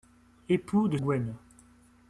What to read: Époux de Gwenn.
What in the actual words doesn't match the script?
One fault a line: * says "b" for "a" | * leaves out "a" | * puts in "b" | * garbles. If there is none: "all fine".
all fine